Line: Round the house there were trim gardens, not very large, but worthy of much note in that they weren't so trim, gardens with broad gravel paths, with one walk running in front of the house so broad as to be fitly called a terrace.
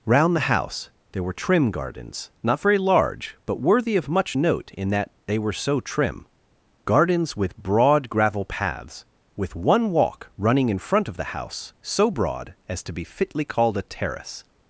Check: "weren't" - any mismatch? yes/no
yes